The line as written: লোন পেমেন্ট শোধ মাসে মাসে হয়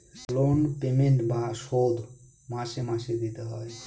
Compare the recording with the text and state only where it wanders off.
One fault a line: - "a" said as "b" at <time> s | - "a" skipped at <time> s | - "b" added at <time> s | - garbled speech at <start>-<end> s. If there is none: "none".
- "বা" added at 1.3 s
- "দিতে" added at 3.2 s